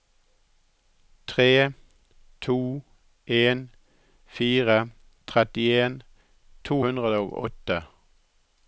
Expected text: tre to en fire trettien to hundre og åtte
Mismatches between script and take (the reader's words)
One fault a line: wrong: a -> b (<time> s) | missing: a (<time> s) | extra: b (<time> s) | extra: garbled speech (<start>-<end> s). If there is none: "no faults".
no faults